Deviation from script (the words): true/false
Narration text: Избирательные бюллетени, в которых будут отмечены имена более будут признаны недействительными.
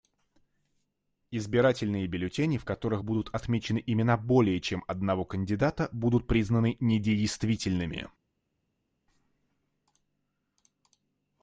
true